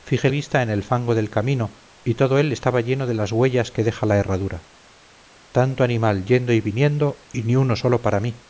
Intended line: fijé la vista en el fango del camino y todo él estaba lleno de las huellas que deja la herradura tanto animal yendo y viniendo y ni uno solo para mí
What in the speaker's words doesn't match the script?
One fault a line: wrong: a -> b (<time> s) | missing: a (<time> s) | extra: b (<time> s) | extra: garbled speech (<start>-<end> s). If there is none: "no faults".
missing: la (0.3 s)